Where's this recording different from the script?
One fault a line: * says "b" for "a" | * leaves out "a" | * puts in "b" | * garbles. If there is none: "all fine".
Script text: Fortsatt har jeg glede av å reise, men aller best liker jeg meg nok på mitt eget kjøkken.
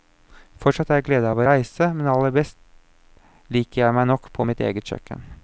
all fine